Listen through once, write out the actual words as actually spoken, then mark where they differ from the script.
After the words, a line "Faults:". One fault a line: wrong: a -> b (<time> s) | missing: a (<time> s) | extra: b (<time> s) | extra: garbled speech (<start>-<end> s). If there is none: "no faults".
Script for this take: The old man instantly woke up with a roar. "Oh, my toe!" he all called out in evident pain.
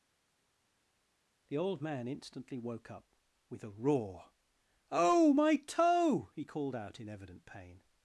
The old man instantly woke up with a roar. "Oh, my toe!" he called out in evident pain.
Faults:
missing: all (6.4 s)